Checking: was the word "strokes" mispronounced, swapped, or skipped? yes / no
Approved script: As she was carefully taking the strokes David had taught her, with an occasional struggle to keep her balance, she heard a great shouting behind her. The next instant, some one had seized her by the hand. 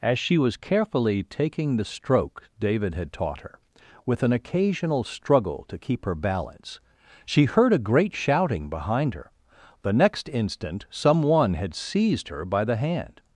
yes